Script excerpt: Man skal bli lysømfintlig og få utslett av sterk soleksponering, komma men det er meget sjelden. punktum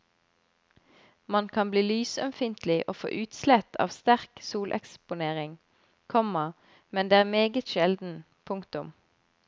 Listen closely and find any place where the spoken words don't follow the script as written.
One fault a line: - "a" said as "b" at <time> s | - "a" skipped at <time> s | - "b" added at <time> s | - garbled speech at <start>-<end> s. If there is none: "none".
- "skal" said as "kan" at 1.6 s